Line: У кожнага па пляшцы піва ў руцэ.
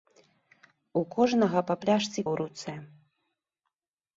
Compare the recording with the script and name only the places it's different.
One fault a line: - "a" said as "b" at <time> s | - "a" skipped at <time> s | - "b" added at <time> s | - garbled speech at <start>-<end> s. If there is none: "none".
- "піва" skipped at 2.2 s